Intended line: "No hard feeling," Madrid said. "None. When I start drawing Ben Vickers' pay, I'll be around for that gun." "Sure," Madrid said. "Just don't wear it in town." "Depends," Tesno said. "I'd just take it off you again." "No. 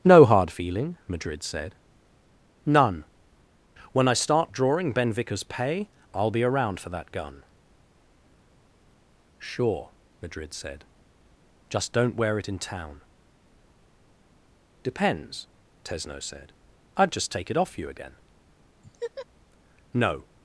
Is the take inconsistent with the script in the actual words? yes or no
no